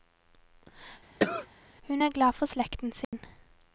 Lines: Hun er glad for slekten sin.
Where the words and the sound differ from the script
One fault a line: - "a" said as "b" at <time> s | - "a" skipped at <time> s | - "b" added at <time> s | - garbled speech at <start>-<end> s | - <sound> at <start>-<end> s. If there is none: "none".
- cough at 1.2-1.5 s
- dropout at 3.0-3.1 s